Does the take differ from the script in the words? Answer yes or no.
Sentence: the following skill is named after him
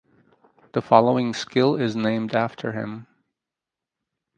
no